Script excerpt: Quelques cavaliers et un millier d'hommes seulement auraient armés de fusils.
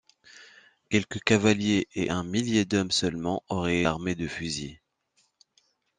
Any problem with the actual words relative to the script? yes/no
no